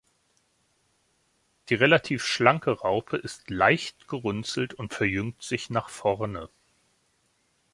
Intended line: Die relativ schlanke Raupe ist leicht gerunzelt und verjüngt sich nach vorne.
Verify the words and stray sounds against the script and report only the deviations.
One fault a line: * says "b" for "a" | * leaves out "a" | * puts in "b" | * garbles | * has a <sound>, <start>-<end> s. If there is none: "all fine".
all fine